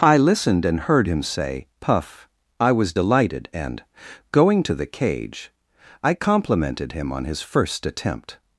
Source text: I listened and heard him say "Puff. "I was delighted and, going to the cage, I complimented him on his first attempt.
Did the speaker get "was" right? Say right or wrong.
right